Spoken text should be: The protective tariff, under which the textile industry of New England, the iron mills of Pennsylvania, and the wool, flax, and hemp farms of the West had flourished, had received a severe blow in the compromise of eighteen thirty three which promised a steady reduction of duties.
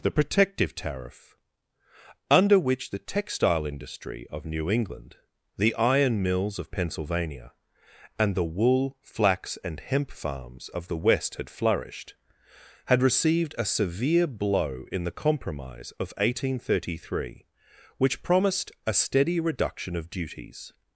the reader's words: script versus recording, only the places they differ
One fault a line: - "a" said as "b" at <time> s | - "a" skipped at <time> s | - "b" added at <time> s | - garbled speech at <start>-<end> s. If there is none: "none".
none